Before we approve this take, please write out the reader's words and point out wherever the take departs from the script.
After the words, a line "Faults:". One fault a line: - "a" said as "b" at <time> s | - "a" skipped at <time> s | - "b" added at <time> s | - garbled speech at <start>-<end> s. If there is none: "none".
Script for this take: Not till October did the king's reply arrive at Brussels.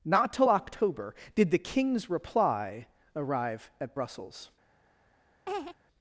Not till October did the king's reply arrive at Brussels.
Faults:
none